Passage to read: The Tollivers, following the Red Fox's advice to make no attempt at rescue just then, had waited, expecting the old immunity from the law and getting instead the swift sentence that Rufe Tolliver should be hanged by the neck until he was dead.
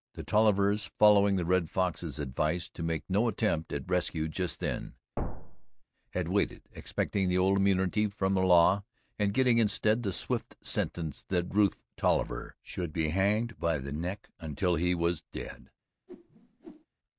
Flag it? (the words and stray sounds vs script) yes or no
yes